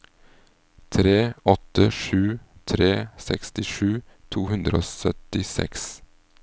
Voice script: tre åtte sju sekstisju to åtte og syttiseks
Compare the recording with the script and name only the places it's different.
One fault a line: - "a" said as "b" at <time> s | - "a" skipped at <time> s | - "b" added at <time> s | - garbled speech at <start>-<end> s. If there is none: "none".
- "tre" added at 2.7 s
- "åtte" said as "hundre" at 4.5 s